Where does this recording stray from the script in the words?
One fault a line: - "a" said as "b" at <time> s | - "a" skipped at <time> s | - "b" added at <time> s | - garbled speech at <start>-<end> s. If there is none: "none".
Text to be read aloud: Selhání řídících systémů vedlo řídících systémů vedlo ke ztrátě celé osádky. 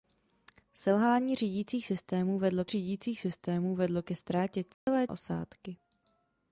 none